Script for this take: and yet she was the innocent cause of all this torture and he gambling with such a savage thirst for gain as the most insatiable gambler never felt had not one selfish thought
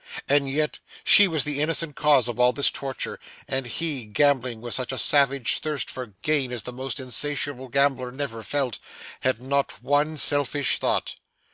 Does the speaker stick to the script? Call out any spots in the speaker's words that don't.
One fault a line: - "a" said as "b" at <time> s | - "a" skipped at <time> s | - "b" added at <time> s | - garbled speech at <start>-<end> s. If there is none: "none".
none